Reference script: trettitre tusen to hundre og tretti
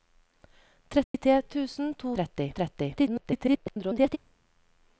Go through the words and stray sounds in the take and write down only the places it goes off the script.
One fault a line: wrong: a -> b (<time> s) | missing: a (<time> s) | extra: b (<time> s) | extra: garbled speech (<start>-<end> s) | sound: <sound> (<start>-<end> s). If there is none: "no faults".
sound: dropout (1.0-1.1 s)
wrong: hundre -> tretti (2.2 s)
extra: garbled speech (2.9-4.2 s)